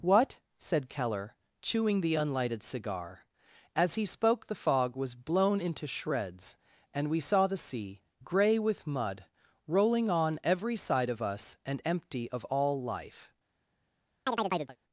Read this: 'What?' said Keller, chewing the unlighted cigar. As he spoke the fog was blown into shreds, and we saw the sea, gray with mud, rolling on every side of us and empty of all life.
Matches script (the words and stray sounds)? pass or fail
fail